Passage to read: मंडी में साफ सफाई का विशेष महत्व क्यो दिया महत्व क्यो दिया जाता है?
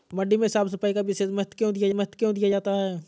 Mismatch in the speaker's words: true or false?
false